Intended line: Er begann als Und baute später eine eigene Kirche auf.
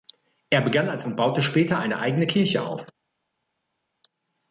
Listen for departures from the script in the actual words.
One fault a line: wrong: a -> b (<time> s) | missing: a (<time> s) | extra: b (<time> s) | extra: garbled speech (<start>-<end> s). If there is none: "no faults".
no faults